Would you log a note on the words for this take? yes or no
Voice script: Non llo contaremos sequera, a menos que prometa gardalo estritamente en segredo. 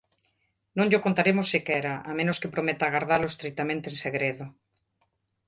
no